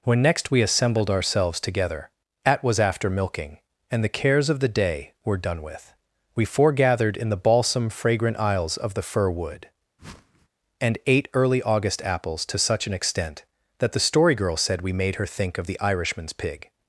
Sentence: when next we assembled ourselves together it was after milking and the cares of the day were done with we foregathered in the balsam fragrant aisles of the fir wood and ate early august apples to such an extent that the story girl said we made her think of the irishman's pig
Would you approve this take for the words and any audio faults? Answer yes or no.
no